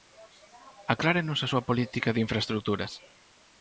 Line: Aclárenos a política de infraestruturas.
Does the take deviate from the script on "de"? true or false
false